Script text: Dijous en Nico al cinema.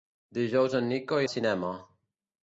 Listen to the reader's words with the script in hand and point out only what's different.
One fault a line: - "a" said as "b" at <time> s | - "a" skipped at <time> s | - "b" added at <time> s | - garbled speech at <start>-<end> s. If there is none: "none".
none